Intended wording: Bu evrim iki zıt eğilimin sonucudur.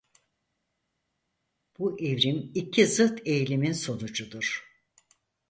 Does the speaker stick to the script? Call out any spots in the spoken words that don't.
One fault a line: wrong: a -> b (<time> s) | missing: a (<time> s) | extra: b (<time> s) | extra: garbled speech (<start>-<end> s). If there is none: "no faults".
no faults